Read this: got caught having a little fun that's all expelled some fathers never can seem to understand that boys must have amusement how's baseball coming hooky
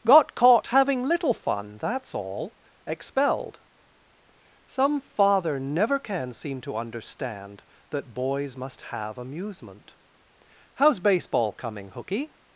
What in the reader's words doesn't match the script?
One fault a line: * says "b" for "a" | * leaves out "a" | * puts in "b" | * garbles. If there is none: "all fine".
* leaves out "a"
* says "father" for "fathers"